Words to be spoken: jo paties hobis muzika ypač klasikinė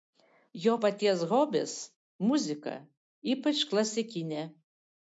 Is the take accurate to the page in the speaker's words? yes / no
yes